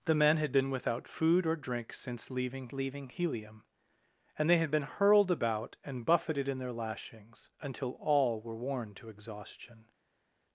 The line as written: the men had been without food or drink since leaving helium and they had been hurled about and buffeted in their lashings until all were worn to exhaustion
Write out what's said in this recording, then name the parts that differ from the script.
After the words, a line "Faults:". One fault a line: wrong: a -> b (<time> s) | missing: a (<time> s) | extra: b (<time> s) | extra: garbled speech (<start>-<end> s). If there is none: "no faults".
the men had been without food or drink since leaving leaving helium and they had been hurled about and buffeted in their lashings until all were worn to exhaustion
Faults:
extra: leaving (2.7 s)